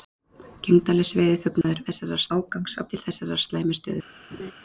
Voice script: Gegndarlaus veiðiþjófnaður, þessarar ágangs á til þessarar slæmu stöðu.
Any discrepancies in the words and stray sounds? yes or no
yes